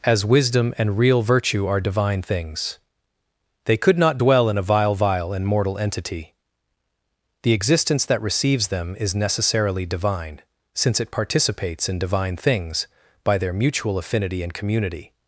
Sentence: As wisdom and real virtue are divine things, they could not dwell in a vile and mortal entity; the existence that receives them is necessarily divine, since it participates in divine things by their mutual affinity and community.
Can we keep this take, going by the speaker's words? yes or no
no